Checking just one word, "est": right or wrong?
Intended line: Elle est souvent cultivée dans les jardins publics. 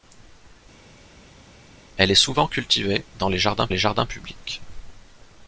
right